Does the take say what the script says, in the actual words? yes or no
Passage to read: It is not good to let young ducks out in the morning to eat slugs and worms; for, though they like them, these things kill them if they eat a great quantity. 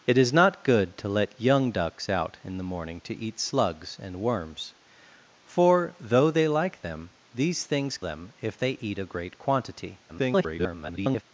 no